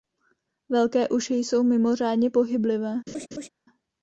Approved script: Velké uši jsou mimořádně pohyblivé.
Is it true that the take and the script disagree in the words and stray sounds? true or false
true